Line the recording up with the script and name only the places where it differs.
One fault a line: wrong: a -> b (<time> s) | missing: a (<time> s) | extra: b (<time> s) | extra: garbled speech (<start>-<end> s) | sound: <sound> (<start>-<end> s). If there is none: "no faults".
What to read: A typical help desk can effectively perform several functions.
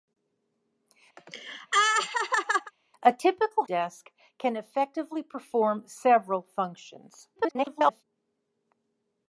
sound: laugh (1.2-2.7 s)
missing: help (3.6 s)
extra: garbled speech (7.4-8.0 s)